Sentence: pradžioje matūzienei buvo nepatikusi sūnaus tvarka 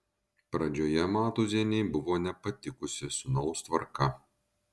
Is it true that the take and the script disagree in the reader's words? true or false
false